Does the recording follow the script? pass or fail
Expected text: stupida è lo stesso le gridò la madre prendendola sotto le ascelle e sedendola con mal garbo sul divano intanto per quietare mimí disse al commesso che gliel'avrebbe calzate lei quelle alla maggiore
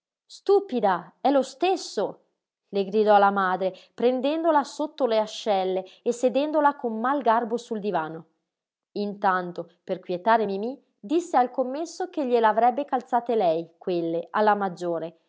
pass